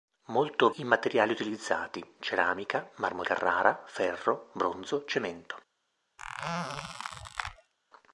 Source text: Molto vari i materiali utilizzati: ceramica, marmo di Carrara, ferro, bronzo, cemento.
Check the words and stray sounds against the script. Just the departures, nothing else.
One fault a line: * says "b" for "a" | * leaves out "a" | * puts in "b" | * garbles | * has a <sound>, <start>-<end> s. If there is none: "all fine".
* leaves out "vari"
* leaves out "di"
* has a squeak, 6.2-7.7 s